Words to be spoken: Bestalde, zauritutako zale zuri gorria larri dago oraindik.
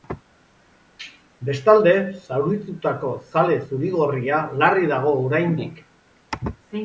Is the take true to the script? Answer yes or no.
yes